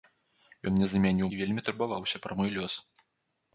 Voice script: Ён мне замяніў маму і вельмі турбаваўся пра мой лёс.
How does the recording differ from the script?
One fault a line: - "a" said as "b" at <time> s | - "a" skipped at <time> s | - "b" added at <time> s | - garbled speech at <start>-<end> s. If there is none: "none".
- "маму" skipped at 1.3 s